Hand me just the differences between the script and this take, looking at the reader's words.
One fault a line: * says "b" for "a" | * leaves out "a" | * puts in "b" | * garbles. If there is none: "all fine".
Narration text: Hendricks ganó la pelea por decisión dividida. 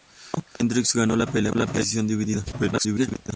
* garbles